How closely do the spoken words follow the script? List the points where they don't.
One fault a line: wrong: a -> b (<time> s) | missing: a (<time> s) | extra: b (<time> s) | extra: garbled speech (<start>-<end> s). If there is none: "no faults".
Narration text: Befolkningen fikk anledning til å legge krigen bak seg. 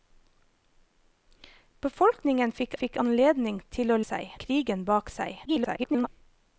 extra: fikk (2.8 s)
wrong: legge -> seg (4.0 s)
extra: garbled speech (5.4-6.1 s)